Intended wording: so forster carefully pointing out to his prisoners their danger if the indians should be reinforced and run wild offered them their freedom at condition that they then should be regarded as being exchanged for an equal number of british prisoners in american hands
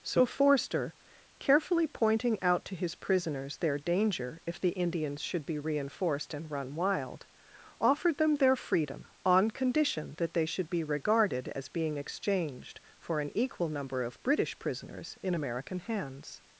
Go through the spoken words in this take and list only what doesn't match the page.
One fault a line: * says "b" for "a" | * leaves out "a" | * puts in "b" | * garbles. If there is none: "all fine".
* says "on" for "at"
* leaves out "then"